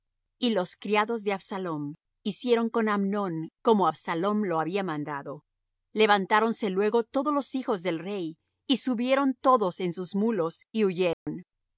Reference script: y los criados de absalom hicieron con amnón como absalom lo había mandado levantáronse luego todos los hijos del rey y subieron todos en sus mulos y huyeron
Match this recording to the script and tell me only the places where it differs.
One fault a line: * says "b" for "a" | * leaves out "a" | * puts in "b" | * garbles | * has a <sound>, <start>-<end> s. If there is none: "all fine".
* has a dropout, 11.1-11.3 s